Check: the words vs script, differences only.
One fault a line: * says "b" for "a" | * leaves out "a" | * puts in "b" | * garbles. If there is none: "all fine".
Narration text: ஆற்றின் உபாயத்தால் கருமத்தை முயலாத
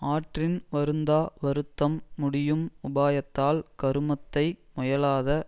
* puts in "வருந்தா வருத்தம் முடியும்"